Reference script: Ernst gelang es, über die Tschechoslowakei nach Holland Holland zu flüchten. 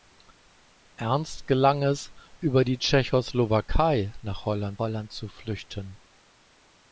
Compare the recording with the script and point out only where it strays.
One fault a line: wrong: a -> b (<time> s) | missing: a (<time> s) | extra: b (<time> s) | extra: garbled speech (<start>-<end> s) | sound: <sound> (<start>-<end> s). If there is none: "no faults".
no faults